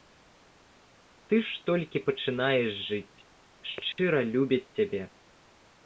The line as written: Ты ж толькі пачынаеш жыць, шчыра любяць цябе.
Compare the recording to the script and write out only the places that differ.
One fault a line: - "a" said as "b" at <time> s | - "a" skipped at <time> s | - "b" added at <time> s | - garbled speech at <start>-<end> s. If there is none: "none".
none